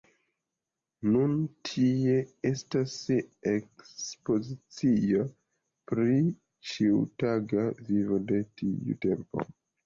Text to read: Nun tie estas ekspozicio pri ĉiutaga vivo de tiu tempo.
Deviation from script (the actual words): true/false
false